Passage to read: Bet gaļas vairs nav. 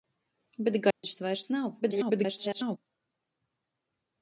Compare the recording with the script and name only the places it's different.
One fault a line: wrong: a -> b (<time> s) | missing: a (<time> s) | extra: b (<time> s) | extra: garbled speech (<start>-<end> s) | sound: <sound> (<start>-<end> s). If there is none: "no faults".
sound: dropout (0.9-1.0 s)
extra: garbled speech (1.8-2.8 s)